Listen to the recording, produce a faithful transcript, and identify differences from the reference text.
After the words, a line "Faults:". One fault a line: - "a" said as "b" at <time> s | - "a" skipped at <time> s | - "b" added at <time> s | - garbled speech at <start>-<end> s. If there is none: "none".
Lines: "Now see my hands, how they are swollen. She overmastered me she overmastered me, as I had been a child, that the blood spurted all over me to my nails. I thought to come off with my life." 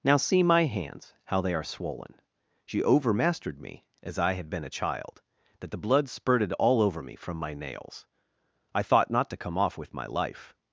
"Now see my hands, how they are swollen. She overmastered me, as I had been a child, that the blood spurted all over me from my nails. I thought not to come off with my life."
Faults:
- "she overmastered me" skipped at 3.9 s
- "to" said as "from" at 7.1 s
- "not" added at 9.1 s